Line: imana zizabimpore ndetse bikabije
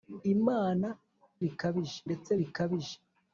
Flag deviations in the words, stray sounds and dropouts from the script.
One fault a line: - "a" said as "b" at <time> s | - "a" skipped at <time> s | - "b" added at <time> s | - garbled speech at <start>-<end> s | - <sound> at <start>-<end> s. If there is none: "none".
- "zizabimpore" said as "bikabije" at 1.4 s